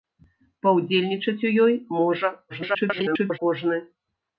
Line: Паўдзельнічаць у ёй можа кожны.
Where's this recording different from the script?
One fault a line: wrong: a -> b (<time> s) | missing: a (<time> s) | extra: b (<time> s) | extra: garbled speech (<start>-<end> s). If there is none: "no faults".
extra: garbled speech (2.5-3.4 s)